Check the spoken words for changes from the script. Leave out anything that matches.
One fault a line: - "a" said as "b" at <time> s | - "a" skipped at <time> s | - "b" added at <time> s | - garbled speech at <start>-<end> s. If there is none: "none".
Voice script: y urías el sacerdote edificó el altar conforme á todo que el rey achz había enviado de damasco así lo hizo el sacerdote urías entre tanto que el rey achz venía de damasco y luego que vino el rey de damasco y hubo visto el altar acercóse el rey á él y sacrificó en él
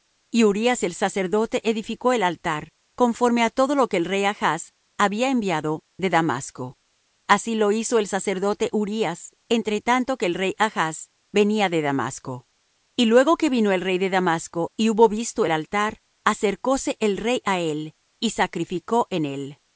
- "lo" added at 3.8 s